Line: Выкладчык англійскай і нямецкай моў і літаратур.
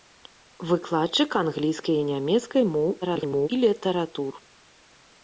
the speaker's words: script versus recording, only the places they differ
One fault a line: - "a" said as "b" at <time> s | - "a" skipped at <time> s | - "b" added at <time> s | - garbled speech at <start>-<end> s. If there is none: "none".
- garbled speech at 3.0-3.5 s